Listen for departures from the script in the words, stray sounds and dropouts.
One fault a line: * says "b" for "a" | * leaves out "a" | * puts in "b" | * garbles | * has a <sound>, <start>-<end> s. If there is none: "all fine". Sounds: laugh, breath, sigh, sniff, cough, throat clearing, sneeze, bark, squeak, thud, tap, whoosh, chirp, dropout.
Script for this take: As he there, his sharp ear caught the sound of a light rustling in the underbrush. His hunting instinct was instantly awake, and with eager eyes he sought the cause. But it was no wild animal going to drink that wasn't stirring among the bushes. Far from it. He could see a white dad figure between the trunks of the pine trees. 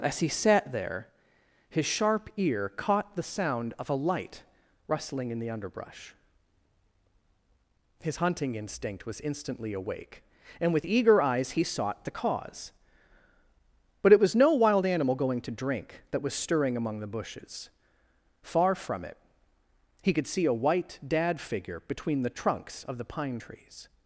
* puts in "sat"
* says "was" for "wasn't"